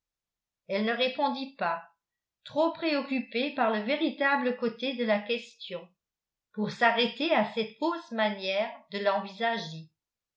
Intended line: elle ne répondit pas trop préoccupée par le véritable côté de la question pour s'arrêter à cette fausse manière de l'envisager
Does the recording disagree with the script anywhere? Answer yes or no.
no